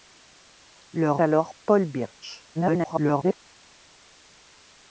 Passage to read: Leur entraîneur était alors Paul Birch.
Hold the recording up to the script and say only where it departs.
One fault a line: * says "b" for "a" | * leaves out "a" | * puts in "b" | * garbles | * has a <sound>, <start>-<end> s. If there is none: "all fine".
* leaves out "entraîneur était"
* garbles